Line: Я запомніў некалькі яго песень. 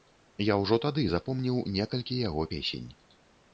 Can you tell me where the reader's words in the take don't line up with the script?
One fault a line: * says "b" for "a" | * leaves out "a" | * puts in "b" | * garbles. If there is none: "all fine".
* puts in "ўжо тады"